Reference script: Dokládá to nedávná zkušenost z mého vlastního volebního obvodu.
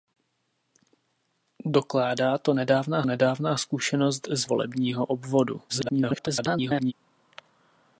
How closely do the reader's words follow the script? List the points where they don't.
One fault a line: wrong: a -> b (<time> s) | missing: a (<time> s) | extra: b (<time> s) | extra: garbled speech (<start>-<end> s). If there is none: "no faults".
extra: nedávná (3.0 s)
missing: mého vlastního (4.5 s)
extra: garbled speech (5.7-6.9 s)